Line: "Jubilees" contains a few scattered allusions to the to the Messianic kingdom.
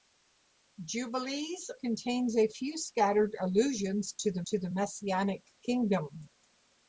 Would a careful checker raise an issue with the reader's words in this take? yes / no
no